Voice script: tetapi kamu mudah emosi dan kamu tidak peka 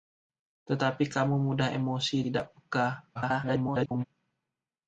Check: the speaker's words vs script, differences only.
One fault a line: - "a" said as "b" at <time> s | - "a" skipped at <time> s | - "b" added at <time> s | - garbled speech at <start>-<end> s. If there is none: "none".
- "dan kamu" skipped at 2.2 s
- garbled speech at 3.1-4.0 s